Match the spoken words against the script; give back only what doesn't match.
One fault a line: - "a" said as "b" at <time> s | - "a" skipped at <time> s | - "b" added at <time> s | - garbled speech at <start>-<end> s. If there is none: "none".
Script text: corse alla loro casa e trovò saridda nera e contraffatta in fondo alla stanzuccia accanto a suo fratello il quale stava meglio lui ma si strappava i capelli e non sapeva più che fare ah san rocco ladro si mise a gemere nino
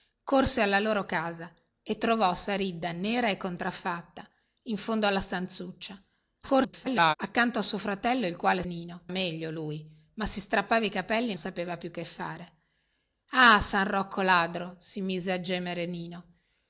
- garbled speech at 6.4-7.1 s
- "stava" said as "nino" at 8.6 s
- "non" skipped at 11.4 s